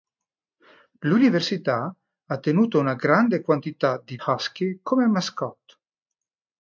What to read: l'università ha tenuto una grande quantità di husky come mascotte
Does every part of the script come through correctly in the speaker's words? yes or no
yes